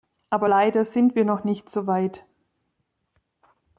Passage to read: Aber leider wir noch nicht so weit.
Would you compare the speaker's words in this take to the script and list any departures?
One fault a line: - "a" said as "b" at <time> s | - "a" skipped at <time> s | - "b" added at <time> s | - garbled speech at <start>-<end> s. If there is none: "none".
- "sind" added at 0.8 s